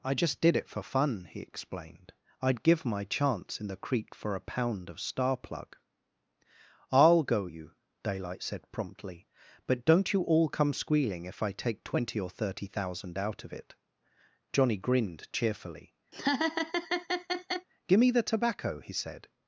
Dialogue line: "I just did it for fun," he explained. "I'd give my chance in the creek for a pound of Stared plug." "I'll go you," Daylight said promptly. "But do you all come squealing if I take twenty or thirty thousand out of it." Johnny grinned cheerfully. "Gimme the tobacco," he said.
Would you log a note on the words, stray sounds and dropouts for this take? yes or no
yes